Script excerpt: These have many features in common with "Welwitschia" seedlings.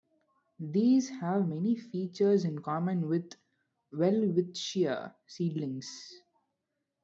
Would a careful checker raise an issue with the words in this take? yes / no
no